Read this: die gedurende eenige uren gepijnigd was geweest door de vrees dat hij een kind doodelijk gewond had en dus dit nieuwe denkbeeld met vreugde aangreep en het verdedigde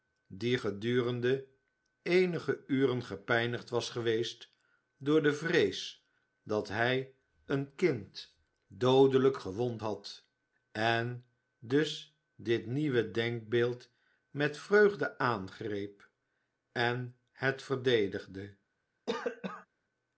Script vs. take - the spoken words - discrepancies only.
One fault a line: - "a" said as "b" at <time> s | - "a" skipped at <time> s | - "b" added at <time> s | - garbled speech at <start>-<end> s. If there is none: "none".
none